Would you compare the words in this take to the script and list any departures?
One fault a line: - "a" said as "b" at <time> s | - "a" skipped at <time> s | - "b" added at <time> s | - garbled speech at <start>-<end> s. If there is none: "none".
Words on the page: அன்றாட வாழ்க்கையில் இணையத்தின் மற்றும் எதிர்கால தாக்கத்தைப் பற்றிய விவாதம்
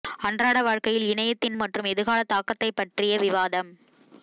none